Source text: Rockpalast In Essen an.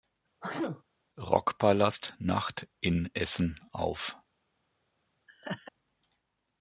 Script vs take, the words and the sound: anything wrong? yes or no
yes